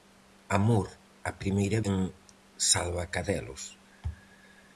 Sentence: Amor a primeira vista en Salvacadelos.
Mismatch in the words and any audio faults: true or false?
true